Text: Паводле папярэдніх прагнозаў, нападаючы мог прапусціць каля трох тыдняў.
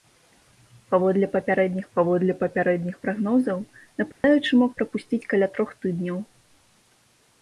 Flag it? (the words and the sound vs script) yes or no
yes